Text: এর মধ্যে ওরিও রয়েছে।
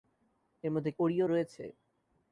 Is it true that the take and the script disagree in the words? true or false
false